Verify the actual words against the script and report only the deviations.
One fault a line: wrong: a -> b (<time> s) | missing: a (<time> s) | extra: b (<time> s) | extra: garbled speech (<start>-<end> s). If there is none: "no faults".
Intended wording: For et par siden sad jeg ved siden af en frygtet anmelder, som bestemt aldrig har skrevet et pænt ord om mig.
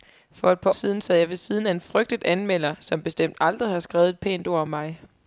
no faults